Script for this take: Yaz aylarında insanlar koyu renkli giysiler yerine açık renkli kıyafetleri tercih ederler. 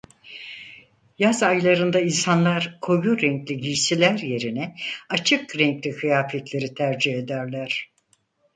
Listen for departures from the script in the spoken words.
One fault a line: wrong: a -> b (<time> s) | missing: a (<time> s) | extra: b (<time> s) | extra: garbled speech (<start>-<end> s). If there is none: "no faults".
no faults